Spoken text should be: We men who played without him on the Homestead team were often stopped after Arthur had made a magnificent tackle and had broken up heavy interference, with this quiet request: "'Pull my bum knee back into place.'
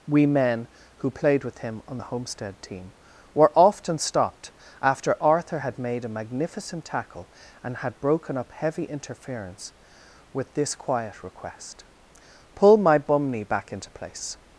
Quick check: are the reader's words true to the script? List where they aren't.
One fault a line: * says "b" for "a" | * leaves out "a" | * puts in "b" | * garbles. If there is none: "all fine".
* says "with" for "without"